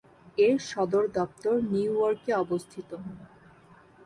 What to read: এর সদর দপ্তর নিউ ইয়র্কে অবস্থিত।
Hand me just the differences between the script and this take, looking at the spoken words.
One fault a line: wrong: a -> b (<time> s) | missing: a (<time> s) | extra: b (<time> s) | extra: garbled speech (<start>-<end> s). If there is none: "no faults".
no faults